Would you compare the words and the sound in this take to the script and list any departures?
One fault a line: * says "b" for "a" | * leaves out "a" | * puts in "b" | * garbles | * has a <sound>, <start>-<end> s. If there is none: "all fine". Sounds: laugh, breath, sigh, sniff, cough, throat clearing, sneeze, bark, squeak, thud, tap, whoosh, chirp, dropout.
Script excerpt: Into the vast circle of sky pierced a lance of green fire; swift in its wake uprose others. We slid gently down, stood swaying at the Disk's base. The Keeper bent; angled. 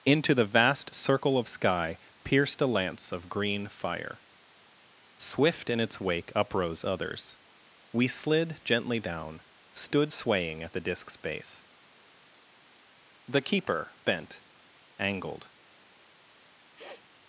* has a sniff, 16.7-17.1 s